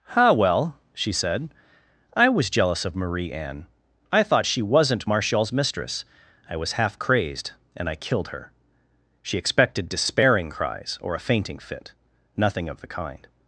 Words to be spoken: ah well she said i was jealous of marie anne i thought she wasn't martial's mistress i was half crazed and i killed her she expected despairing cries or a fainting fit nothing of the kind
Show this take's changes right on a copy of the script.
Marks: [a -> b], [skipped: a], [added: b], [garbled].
ah well she said i was jealous of marie anne i thought she wasn't martial's mistress i was half crazed and i killed her she expected despairing cries or a fainting fit nothing of the kind